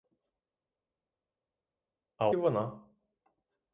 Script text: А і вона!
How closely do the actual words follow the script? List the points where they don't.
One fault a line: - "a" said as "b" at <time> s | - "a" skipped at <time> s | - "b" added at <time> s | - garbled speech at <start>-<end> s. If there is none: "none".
none